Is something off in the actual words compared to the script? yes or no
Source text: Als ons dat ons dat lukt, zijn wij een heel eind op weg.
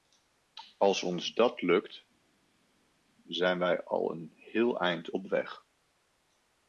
yes